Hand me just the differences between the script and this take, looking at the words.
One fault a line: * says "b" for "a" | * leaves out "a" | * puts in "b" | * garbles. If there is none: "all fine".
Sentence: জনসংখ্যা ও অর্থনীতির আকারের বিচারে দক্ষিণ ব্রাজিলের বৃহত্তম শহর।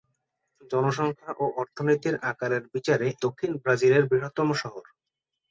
all fine